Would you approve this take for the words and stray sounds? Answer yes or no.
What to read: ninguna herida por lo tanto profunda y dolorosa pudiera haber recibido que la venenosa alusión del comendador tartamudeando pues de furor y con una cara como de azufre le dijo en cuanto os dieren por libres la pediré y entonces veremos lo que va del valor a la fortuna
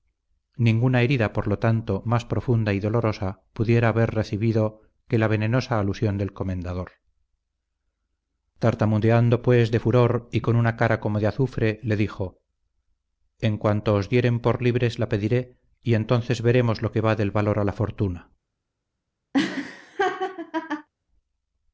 no